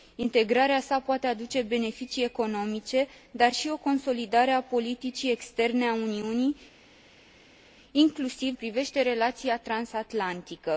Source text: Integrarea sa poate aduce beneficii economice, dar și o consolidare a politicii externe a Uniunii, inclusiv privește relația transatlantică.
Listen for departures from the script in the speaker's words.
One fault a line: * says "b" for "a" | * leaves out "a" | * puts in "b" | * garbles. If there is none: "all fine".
all fine